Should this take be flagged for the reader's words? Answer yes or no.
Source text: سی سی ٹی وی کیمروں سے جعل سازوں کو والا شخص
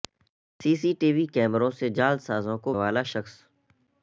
no